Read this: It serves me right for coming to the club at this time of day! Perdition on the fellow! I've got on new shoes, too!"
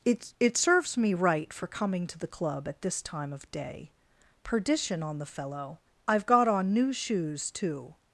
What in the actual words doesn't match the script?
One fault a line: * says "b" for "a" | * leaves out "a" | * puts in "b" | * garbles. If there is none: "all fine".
* puts in "it"